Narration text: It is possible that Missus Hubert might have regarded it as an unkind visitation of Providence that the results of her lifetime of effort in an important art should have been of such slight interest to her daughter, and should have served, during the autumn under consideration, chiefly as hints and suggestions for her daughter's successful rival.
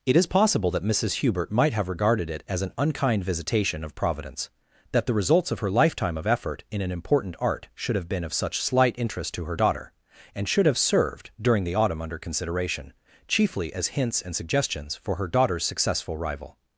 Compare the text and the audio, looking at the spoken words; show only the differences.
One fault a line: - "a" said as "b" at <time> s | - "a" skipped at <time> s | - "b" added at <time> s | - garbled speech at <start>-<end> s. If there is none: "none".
none